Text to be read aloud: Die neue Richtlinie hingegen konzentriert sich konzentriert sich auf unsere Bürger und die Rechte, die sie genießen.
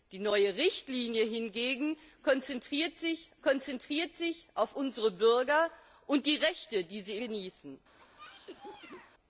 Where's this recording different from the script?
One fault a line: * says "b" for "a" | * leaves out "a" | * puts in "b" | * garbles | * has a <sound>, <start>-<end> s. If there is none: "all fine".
* has a cough, 8.0-9.1 s